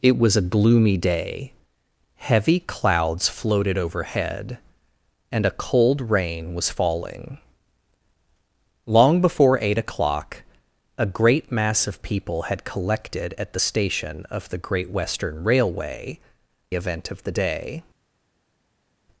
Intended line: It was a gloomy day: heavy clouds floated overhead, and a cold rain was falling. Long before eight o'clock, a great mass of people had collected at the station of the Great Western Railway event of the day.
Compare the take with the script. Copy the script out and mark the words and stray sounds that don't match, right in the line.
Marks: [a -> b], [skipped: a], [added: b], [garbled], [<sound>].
It was a gloomy day: heavy clouds floated overhead, and a cold rain was falling. Long before eight o'clock, a great mass of people had collected at the station of the Great Western Railway event of the day.